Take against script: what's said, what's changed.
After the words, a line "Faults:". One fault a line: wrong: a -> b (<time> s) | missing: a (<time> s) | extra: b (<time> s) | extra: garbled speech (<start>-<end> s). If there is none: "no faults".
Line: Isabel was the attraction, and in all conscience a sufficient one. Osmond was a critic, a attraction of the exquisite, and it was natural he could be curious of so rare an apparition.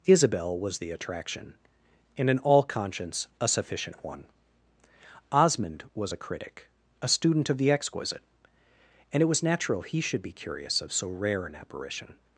Isabel was the attraction, and in all conscience a sufficient one. Osmond was a critic, a student of the exquisite, and it was natural he should be curious of so rare an apparition.
Faults:
wrong: attraction -> student (7.1 s)
wrong: could -> should (10.0 s)